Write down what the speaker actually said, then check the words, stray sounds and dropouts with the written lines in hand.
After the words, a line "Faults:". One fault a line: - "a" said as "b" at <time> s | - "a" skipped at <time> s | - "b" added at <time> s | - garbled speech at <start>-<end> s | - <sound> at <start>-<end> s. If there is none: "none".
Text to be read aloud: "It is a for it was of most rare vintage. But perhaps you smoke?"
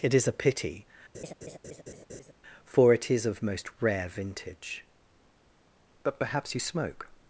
"It is a pity, for it is of most rare vintage. But perhaps you smoke?"
Faults:
- "pity" added at 0.3 s
- laugh at 1.1-2.3 s
- "was" said as "is" at 3.1 s